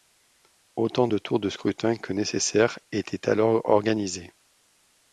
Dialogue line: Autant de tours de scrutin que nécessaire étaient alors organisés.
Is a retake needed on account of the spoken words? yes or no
no